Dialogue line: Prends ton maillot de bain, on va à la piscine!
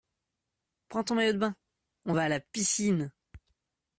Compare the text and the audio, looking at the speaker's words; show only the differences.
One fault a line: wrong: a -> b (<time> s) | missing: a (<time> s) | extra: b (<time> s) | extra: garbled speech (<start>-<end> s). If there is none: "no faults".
no faults